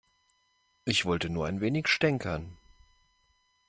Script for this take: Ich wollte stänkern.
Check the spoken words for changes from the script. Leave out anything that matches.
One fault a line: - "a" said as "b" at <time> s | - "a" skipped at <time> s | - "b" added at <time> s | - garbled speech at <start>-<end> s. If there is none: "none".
- "nur ein wenig" added at 1.3 s